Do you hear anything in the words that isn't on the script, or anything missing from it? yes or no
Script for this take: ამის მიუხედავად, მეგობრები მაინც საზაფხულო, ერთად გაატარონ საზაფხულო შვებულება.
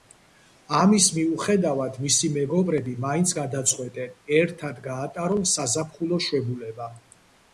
yes